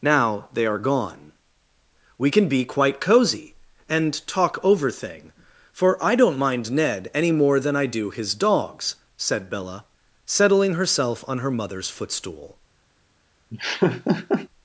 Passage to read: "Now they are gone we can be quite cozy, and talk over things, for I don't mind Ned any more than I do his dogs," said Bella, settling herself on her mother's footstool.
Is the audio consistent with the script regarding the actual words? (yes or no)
no